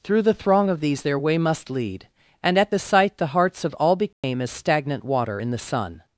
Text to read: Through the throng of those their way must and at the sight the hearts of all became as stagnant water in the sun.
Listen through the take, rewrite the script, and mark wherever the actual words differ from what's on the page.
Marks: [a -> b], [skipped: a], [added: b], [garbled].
Through the throng of [those -> these] their way must [added: lead] and at the sight the hearts of all became as stagnant water in the sun.